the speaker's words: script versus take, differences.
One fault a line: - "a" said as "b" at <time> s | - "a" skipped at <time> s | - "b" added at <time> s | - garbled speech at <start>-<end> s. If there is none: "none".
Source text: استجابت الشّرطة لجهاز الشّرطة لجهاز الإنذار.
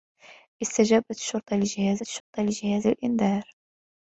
none